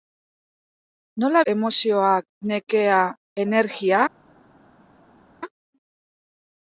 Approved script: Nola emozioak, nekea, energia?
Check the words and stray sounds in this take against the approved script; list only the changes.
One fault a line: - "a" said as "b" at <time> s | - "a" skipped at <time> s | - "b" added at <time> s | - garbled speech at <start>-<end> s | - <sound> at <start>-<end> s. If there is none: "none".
none